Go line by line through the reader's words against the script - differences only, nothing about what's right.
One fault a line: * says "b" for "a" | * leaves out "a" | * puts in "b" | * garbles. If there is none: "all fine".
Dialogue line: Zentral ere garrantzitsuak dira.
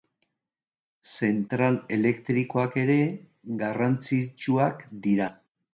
* puts in "elektrikoak"